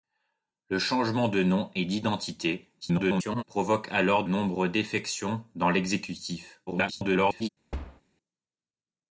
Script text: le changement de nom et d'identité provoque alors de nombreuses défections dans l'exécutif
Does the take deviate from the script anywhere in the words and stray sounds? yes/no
yes